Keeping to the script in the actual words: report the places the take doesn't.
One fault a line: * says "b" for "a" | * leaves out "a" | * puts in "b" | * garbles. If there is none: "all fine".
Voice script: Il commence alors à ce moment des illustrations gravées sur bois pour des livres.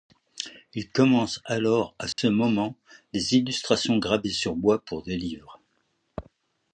all fine